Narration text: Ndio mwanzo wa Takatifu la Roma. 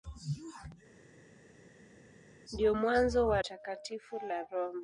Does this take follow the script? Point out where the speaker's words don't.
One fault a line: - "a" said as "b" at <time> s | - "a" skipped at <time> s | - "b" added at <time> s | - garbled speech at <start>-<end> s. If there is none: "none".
none